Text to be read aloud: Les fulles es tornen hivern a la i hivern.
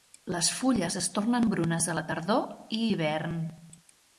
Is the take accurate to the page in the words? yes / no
no